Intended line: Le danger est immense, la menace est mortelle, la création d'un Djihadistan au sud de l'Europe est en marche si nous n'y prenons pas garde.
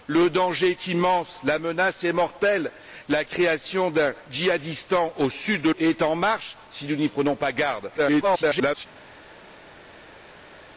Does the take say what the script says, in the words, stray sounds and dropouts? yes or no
no